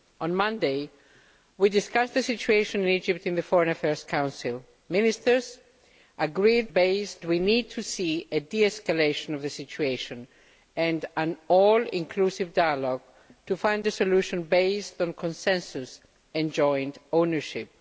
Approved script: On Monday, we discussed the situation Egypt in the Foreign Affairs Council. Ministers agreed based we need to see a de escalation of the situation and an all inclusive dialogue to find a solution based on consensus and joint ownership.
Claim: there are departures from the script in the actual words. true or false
false